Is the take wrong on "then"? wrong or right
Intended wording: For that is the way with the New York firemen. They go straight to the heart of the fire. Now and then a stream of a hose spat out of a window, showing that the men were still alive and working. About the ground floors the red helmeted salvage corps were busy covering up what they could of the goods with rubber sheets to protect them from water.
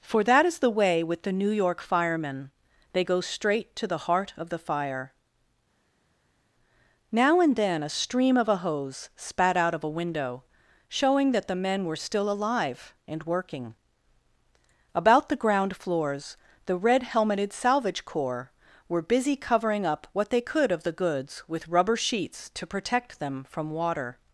right